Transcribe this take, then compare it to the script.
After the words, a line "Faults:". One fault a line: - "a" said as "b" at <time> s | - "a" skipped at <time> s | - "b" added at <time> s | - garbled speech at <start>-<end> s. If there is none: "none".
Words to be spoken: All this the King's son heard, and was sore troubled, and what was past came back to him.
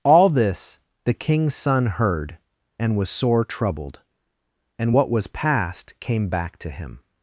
All this the King's son heard, and was sore troubled, and what was past came back to him.
Faults:
none